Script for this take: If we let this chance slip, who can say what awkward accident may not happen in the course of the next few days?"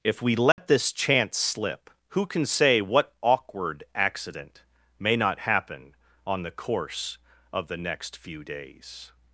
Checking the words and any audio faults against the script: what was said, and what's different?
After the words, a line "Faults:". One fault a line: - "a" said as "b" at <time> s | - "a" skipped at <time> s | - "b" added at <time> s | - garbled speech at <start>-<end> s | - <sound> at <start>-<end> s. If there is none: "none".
If we let this chance slip, who can say what awkward accident may not happen on the course of the next few days?"
Faults:
- dropout at 0.5-0.6 s
- "in" said as "on" at 6.3 s